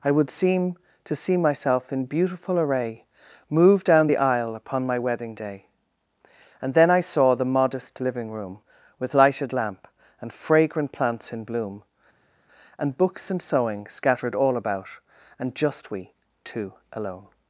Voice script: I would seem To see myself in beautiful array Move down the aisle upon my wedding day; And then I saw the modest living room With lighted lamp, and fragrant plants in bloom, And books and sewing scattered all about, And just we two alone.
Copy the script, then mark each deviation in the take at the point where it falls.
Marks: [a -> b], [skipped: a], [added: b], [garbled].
I would seem To see myself in beautiful array Move down the aisle upon my wedding day; And then I saw the modest living room With lighted lamp, and fragrant plants in bloom, And books and sewing scattered all about, And just we two alone.